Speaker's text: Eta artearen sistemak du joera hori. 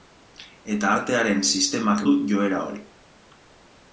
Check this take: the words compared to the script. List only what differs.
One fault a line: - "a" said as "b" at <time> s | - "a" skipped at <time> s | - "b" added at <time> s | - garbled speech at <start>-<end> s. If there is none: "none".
none